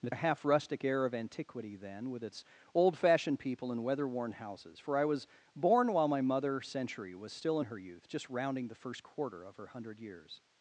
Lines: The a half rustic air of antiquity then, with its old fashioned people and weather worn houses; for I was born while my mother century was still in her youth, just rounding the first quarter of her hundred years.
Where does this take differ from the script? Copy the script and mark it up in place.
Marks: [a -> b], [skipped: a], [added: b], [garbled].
The a half rustic air of antiquity then, with its old fashioned people and weather worn houses; for I was born while my mother century was still in her youth, just rounding the first quarter of her hundred years.